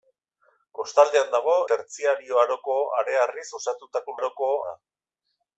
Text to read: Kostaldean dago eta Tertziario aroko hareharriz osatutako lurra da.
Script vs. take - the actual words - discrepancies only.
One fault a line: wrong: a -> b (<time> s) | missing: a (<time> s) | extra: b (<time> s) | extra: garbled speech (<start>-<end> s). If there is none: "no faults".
missing: eta (1.5 s)
wrong: lurra -> aroko (4.2 s)